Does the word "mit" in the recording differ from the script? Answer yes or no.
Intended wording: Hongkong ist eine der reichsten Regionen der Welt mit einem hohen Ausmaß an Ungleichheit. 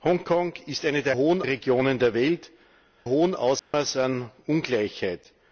yes